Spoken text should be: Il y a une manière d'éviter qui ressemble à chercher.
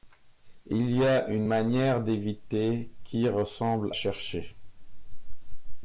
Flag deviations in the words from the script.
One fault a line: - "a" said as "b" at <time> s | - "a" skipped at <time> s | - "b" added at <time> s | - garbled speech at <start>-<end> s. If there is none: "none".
- "à" skipped at 3.9 s